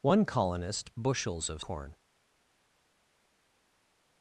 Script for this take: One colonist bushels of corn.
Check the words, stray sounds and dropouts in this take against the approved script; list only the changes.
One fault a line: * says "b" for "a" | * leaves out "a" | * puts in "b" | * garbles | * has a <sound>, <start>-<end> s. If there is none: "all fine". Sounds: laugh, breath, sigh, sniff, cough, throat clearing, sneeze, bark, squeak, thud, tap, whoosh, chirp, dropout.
all fine